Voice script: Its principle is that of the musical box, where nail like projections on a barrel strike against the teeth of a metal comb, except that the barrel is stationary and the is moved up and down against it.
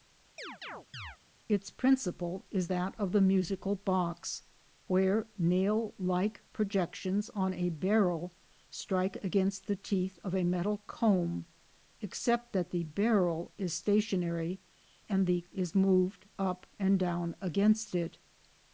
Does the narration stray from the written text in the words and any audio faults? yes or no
yes